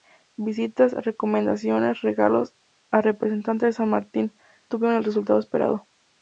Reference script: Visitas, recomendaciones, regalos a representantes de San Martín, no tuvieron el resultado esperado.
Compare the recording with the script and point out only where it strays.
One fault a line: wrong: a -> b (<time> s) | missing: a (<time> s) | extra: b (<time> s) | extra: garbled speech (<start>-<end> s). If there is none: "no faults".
missing: no (4.3 s)